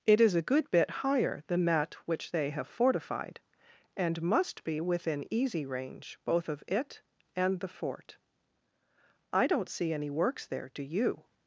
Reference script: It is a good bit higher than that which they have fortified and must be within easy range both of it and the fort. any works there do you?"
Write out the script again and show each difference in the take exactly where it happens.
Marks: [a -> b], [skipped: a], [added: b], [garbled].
It is a good bit higher than that which they have fortified and must be within easy range both of it and the fort. [added: I don't see] any works there do you?"